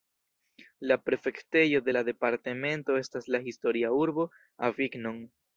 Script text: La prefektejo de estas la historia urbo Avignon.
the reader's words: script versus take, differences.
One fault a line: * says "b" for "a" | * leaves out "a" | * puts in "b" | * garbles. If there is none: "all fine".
* puts in "la departemento"